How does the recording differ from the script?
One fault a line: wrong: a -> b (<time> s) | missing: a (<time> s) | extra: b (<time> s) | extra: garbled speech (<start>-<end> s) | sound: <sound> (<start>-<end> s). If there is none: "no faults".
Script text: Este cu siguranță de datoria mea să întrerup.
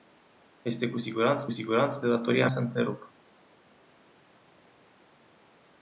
extra: siguranță (1.5 s)
missing: mea (2.5 s)